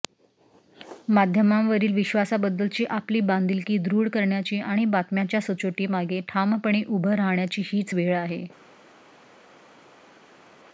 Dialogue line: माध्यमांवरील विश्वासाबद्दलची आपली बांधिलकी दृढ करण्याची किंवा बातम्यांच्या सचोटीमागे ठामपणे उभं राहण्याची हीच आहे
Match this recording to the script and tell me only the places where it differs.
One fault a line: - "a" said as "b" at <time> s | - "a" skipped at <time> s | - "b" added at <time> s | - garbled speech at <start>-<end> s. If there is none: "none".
- "किंवा" said as "आणि" at 4.6 s
- "वेळ" added at 7.9 s